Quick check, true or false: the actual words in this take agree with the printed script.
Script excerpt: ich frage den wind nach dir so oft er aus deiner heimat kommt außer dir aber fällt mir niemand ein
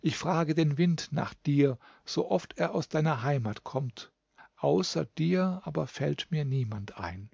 true